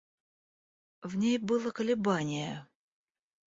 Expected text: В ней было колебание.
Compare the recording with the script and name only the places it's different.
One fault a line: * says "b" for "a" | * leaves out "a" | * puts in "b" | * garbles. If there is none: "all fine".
all fine